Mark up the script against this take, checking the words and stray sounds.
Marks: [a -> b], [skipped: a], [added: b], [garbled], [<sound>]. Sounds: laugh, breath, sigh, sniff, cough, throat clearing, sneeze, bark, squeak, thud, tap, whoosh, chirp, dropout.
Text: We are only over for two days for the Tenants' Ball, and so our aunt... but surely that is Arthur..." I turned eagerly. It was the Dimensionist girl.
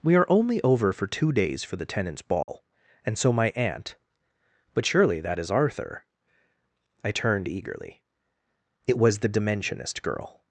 We are only over for two days for the Tenants' Ball, [dropout] and so [our -> my] aunt... but surely that is Arthur..." I turned eagerly. It was the Dimensionist girl.